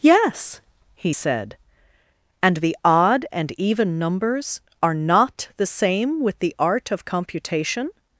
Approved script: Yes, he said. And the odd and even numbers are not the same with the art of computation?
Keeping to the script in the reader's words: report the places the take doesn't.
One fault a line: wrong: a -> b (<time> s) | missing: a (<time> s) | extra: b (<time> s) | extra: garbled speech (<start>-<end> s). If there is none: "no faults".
no faults